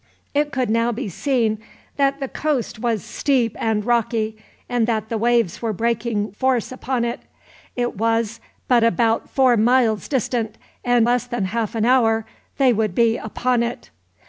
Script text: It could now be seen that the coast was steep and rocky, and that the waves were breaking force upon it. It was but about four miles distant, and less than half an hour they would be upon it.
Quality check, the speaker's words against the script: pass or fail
pass